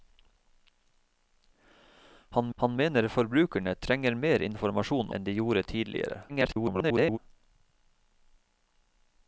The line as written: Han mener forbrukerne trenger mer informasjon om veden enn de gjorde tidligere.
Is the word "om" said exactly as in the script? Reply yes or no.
no